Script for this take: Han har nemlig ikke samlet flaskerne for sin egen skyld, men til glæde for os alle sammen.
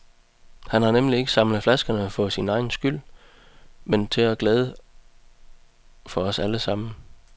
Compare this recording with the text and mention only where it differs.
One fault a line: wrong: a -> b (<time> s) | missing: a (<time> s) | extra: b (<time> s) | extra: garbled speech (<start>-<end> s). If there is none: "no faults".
no faults